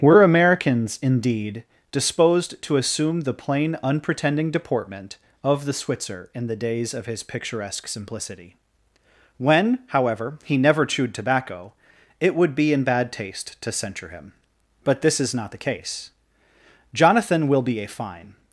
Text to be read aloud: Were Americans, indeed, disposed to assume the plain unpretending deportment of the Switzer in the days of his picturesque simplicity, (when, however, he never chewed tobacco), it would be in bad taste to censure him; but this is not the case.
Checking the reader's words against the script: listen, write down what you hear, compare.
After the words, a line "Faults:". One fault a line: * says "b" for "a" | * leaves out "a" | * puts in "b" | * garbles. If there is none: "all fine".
Were Americans, indeed, disposed to assume the plain unpretending deportment of the Switzer in the days of his picturesque simplicity, (when, however, he never chewed tobacco), it would be in bad taste to censure him; but this is not the case. Jonathan will be a fine
Faults:
* puts in "Jonathan will be a fine"